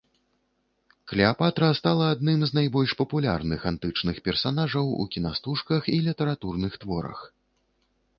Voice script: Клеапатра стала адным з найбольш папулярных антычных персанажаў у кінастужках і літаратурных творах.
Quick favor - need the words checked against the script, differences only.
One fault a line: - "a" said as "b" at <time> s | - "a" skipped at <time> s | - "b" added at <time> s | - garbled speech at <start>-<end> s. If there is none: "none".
none